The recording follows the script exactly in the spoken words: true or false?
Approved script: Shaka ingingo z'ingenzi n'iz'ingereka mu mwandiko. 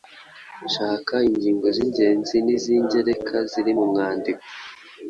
false